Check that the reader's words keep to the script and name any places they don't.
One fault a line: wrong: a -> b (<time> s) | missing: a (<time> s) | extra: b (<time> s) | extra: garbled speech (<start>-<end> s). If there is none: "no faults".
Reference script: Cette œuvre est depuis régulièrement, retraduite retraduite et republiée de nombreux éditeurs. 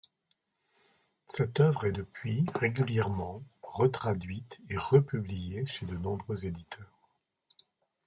missing: retraduite (4.6 s)
extra: chez (5.7 s)